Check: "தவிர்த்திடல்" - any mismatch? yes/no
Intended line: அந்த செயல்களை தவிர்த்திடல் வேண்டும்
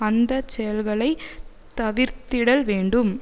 no